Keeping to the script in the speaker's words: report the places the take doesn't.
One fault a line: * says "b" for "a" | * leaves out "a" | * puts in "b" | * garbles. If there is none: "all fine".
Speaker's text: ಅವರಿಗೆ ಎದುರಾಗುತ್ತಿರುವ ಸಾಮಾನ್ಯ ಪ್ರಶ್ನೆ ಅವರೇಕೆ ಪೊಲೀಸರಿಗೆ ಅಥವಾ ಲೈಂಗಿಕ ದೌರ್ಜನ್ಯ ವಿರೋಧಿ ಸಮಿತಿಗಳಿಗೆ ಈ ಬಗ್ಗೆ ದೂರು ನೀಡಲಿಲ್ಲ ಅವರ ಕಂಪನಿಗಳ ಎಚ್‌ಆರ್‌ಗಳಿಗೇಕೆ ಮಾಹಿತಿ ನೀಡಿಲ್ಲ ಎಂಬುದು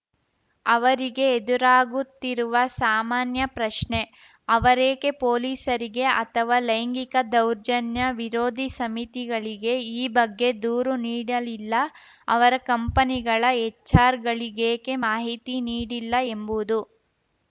all fine